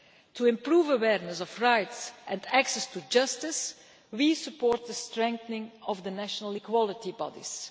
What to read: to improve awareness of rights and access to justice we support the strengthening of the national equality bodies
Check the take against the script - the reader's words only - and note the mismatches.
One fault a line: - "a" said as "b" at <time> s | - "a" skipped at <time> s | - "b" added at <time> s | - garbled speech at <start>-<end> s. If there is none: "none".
none